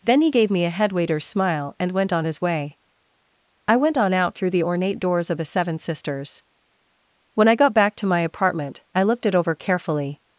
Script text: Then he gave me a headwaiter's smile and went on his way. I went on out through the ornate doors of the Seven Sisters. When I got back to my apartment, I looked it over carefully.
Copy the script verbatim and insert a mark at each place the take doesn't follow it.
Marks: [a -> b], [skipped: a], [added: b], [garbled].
Then he gave me a headwaiter's smile and went on his way. I went on out through the ornate doors of the Seven Sisters. When I got back to my apartment, I looked it over carefully.